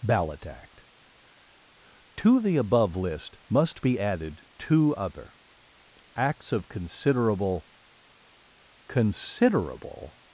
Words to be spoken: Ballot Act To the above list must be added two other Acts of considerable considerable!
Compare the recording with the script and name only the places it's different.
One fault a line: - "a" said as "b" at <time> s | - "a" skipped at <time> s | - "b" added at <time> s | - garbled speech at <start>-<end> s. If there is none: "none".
none